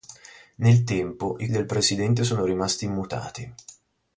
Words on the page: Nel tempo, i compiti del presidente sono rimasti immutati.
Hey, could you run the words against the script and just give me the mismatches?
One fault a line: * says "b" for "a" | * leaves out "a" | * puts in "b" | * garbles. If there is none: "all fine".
* leaves out "compiti"